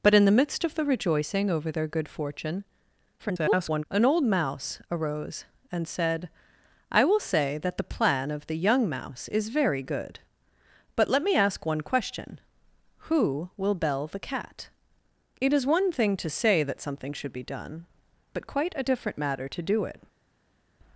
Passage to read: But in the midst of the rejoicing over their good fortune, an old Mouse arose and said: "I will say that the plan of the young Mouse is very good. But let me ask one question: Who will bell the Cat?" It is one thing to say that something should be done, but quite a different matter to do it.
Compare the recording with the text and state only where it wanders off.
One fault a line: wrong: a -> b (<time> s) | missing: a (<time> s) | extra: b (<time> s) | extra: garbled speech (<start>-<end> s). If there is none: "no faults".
extra: garbled speech (3.2-3.8 s)